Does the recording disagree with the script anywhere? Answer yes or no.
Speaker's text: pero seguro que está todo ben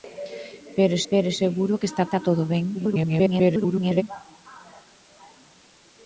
yes